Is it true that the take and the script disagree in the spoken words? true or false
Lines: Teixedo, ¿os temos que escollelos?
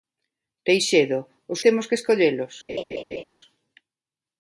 false